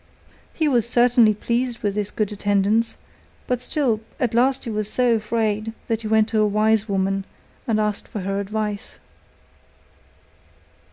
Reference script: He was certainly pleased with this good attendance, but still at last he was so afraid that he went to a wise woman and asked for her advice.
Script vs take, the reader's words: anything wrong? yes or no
no